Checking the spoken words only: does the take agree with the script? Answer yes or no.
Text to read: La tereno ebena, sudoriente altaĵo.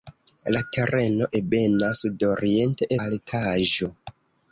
yes